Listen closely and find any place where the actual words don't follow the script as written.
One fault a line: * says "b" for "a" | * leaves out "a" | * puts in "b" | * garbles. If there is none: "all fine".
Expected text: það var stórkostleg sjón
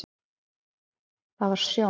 * leaves out "stórkostleg"